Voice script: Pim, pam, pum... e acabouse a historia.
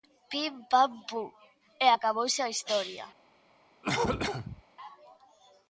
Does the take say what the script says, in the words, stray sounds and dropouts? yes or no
no